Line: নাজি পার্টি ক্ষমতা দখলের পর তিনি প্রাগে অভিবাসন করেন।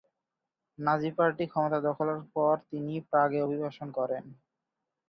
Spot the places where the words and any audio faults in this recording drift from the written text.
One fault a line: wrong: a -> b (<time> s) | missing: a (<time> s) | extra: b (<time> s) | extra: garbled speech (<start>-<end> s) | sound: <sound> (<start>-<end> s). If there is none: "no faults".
no faults